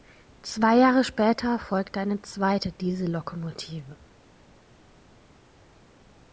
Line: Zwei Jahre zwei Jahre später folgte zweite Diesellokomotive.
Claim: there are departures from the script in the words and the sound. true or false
true